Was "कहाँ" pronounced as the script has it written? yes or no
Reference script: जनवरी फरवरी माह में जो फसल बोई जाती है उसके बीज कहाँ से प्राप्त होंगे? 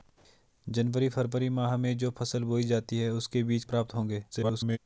no